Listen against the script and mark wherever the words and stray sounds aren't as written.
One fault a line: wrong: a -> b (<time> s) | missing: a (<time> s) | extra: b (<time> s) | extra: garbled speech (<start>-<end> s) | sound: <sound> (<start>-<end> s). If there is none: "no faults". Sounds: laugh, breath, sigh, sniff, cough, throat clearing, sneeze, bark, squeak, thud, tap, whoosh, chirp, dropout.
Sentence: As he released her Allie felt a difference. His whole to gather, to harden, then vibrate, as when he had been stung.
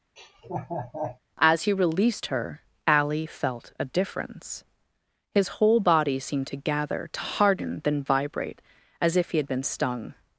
sound: laugh (0.2-1.2 s)
extra: body seemed (5.8 s)
wrong: when -> if (9.2 s)